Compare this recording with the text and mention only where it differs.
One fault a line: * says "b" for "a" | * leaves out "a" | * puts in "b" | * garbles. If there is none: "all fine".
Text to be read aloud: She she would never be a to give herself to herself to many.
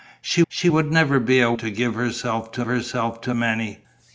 all fine